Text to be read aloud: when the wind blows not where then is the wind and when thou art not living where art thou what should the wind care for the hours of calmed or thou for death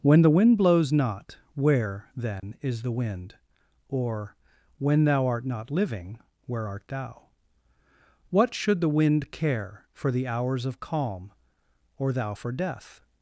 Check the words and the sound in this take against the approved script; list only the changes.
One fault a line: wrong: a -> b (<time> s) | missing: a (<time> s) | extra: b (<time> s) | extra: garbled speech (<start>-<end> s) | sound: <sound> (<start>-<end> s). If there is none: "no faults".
sound: dropout (2.4-2.4 s)
wrong: and -> or (3.9 s)
wrong: calmed -> calm (10.8 s)